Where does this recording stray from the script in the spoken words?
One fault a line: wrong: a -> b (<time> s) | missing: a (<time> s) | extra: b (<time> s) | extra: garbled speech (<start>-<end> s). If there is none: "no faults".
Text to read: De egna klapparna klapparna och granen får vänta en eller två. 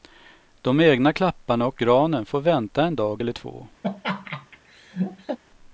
missing: klapparna (1.7 s)
extra: dag (3.0 s)